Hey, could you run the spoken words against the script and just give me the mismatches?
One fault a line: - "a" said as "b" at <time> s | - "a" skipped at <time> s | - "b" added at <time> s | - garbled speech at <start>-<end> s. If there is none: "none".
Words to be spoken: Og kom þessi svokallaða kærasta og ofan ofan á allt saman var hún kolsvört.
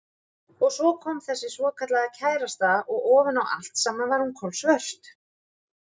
- "svo" added at 0.8 s
- "ofan" skipped at 3.4 s